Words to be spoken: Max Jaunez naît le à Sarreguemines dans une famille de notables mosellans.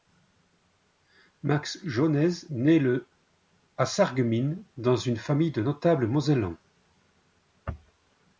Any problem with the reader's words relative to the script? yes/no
no